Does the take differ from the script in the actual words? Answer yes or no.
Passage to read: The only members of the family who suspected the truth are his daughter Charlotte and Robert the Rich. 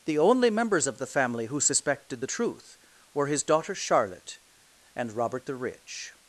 yes